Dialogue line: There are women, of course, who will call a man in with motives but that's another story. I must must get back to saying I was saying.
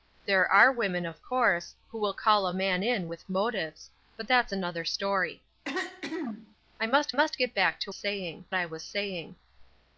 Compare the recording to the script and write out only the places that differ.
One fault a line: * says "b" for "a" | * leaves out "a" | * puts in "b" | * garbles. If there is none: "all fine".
all fine